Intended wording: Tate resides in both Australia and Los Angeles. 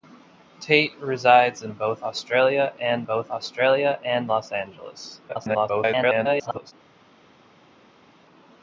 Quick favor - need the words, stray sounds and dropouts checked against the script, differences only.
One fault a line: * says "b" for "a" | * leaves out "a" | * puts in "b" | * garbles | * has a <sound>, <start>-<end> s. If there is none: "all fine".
* puts in "both Australia and"
* garbles